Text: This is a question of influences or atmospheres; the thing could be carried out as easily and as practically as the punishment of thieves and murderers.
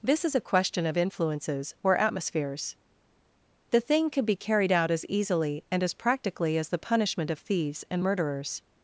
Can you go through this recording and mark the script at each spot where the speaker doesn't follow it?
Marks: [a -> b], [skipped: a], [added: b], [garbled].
This is a question of influences or atmospheres; the thing could be carried out as easily and as practically as the punishment of thieves and murderers.